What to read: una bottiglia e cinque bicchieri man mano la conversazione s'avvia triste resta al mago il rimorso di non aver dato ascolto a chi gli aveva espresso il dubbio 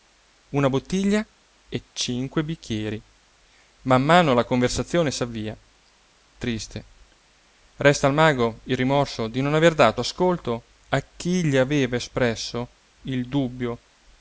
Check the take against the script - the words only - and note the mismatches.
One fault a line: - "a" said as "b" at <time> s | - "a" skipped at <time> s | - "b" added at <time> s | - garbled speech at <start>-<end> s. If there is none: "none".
none